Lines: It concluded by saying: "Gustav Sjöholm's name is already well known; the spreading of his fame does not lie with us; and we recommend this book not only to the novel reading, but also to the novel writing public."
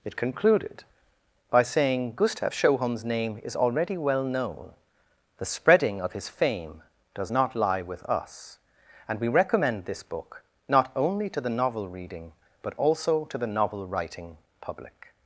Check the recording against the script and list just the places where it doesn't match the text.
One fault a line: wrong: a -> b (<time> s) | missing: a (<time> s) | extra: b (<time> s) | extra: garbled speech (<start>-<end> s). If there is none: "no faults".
no faults